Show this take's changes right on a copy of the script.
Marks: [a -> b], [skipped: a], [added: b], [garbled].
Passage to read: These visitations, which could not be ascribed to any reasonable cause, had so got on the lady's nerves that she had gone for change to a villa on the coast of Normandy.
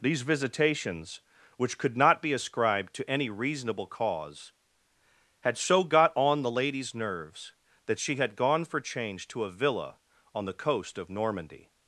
These visitations, which could not be ascribed to any reasonable cause, had so got on the lady's nerves that she had gone for change to a villa on the coast of Normandy.